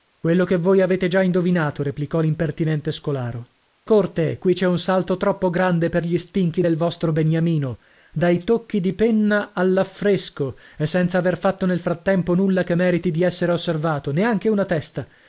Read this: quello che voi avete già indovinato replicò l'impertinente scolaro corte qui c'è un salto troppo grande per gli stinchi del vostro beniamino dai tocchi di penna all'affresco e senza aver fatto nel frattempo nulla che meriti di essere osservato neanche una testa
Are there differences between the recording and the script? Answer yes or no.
no